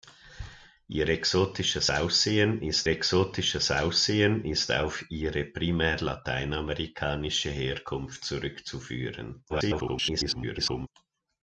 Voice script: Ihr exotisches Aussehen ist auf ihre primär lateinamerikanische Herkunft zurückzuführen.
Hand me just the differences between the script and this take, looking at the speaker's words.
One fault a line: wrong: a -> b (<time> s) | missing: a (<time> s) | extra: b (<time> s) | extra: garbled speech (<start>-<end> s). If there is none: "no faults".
extra: exotisches Aussehen ist (2.9 s)
extra: garbled speech (9.5-10.9 s)